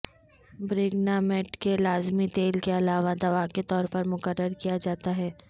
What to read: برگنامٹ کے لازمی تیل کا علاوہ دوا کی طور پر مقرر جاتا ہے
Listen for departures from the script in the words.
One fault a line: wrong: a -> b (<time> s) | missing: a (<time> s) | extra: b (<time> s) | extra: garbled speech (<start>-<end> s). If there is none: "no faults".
wrong: کا -> کے (2.6 s)
wrong: کی -> کے (3.5 s)
extra: کیا (4.6 s)